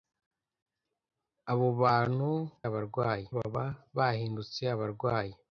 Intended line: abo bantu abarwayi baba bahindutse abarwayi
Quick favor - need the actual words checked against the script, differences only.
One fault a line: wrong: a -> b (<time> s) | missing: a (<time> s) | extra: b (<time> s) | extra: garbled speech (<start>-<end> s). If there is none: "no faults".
no faults